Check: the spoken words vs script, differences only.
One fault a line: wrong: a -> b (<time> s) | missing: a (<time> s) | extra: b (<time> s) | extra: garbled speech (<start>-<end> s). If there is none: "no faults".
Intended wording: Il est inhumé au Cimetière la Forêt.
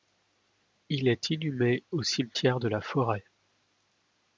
extra: de (2.6 s)